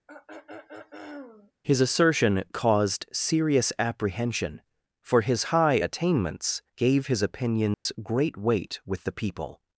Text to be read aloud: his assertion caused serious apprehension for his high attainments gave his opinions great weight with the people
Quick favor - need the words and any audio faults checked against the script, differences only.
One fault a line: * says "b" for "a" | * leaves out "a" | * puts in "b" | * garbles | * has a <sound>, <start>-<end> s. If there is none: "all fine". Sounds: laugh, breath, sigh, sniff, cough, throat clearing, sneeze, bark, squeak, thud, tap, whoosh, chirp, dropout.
* has a throat clearing, 0.1-1.5 s
* has a dropout, 7.7-7.9 s